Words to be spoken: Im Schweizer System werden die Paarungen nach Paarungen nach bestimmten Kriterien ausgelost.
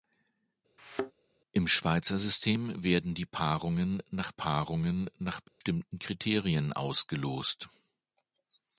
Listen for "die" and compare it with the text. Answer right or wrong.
right